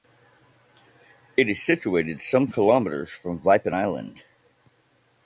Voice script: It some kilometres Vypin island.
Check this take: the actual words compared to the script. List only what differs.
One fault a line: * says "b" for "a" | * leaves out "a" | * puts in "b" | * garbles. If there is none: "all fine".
* puts in "is situated"
* puts in "from"